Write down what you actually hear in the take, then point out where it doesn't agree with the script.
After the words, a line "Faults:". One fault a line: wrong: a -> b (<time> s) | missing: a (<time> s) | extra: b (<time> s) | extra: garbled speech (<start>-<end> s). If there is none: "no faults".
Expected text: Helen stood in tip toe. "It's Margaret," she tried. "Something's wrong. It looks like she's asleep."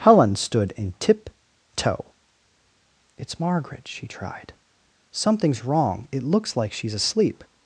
Helen stood in tip toe. "It's Margaret," she tried. "Something's wrong. It looks like she's asleep."
Faults:
no faults